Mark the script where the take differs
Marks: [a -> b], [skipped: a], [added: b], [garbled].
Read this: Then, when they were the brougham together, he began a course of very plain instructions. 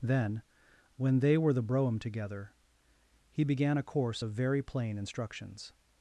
Then, when they were the brougham together, he began a course of very plain instructions.